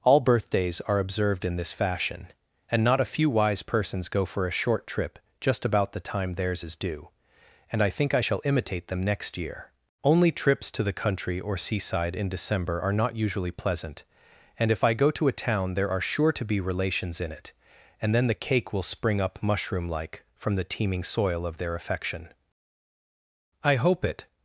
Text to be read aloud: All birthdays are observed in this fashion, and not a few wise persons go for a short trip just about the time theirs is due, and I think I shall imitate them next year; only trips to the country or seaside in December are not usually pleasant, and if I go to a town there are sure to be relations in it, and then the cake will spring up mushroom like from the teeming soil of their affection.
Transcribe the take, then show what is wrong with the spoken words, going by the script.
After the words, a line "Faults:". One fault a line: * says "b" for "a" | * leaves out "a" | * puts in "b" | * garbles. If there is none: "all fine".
All birthdays are observed in this fashion, and not a few wise persons go for a short trip just about the time theirs is due, and I think I shall imitate them next year; only trips to the country or seaside in December are not usually pleasant, and if I go to a town there are sure to be relations in it, and then the cake will spring up mushroom like from the teeming soil of their affection. I hope it
Faults:
* puts in "I hope it"